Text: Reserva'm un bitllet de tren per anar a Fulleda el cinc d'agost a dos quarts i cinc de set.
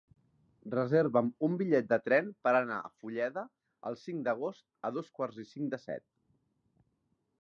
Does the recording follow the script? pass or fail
pass